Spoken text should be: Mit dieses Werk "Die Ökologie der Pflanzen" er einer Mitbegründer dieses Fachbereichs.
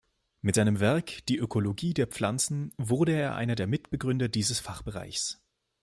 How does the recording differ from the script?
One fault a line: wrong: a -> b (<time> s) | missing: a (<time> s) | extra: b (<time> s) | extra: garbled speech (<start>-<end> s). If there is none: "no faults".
wrong: dieses -> seinem (0.5 s)
extra: wurde (2.8 s)
extra: der (3.6 s)